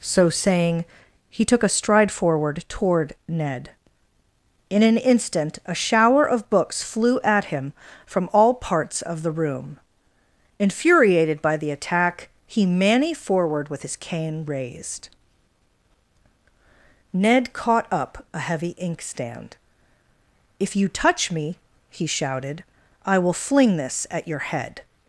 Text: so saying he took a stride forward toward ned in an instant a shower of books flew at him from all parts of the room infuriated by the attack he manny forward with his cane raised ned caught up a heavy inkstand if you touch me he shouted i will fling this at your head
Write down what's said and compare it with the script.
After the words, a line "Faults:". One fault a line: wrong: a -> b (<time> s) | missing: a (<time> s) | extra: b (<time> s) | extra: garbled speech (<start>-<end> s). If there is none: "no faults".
so saying he took a stride forward toward ned in an instant a shower of books flew at him from all parts of the room infuriated by the attack he manny forward with his cane raised ned caught up a heavy inkstand if you touch me he shouted i will fling this at your head
Faults:
no faults